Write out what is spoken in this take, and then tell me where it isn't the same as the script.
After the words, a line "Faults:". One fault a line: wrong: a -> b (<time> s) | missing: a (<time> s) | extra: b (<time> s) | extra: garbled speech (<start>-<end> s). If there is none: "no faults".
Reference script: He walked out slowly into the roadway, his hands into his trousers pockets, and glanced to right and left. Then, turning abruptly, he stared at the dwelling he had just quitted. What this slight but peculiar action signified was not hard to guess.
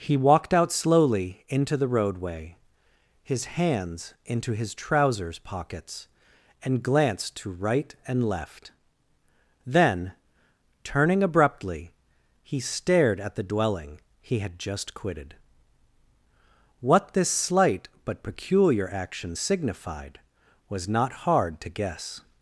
He walked out slowly into the roadway, his hands into his trousers pockets, and glanced to right and left. Then, turning abruptly, he stared at the dwelling he had just quitted. What this slight but peculiar action signified was not hard to guess.
Faults:
no faults